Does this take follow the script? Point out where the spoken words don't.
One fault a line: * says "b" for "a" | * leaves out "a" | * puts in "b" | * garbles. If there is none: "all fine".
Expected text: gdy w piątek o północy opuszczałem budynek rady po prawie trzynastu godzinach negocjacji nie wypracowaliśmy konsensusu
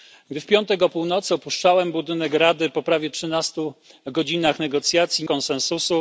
* leaves out "nie wypracowaliśmy"